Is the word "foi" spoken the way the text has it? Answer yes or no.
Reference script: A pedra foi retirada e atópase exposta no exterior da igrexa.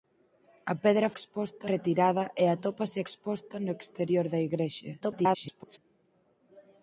no